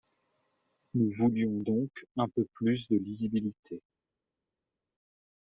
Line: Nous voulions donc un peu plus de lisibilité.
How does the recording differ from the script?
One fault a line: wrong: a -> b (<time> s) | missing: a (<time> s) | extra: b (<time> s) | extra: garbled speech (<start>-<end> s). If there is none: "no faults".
no faults